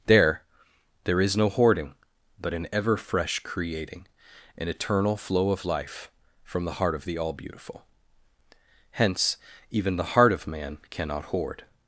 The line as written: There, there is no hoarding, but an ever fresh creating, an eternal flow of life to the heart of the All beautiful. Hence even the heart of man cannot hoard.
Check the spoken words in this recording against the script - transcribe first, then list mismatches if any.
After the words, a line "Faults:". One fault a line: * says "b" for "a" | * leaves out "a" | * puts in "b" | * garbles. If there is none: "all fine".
There, there is no hoarding, but an ever fresh creating, an eternal flow of life from the heart of the All beautiful. Hence even the heart of man cannot hoard.
Faults:
* says "from" for "to"